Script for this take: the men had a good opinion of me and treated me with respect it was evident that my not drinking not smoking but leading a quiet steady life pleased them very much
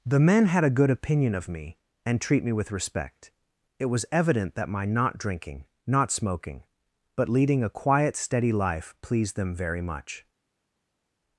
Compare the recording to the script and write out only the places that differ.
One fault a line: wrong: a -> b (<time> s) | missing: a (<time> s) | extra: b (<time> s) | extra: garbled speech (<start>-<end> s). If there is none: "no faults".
wrong: treated -> treat (2.2 s)